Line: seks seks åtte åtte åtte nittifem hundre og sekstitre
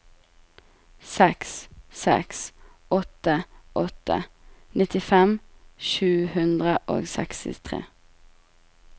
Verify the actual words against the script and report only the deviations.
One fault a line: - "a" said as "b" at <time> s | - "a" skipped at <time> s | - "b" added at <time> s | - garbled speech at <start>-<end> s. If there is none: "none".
- "åtte nittifem" said as "nittifem sju" at 4.8 s